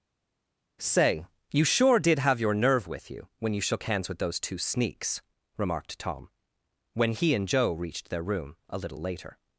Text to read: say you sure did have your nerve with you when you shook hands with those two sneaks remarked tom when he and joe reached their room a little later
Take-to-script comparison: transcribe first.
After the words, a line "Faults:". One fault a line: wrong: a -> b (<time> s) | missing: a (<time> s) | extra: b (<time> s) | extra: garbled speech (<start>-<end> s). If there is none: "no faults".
say you sure did have your nerve with you when you shook hands with those two sneaks remarked tom when he and joe reached their room a little later
Faults:
no faults